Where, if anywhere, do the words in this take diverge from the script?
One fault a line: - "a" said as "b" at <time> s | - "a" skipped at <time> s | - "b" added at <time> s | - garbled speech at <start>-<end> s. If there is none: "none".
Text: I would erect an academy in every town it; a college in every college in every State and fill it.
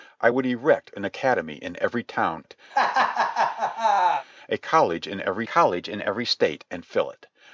none